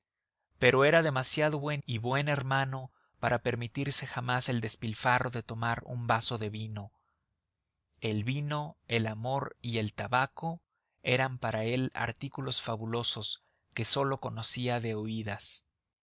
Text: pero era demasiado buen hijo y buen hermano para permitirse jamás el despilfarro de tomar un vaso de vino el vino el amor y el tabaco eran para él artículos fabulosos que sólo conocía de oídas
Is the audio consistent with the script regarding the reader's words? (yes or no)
no